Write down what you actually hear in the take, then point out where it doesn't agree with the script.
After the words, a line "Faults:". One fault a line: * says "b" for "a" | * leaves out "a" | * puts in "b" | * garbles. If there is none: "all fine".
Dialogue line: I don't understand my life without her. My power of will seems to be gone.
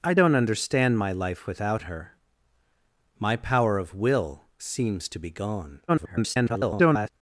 I don't understand my life without her. My power of will seems to be gone. [garbled]
Faults:
* garbles